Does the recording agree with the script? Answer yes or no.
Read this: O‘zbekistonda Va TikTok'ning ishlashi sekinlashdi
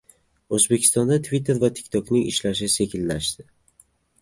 no